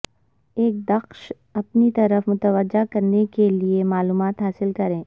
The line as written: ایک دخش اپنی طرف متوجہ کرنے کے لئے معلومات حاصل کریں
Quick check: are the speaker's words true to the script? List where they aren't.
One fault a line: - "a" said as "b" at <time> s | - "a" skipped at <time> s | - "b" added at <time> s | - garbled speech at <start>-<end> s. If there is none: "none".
none